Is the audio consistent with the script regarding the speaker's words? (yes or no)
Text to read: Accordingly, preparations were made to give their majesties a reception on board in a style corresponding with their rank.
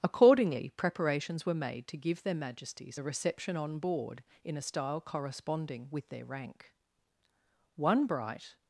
no